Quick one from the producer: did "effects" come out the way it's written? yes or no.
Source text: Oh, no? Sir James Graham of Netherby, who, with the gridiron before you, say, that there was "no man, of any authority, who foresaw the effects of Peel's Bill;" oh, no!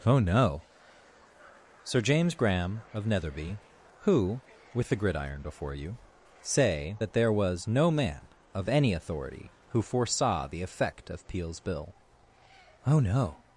no